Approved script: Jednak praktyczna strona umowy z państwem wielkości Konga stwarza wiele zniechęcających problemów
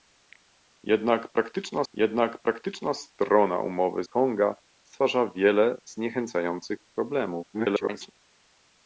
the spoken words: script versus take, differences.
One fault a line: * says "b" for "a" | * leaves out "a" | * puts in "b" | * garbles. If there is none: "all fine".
* puts in "jednak praktyczna"
* leaves out "z państwem wielkości"
* garbles